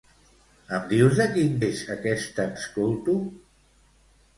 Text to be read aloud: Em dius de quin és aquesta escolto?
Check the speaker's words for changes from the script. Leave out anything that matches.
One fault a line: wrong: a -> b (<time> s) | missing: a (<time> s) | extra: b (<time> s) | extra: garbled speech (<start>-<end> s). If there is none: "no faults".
no faults